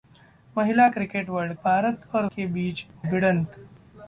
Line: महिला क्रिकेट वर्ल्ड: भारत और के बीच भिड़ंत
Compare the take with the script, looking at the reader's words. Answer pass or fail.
pass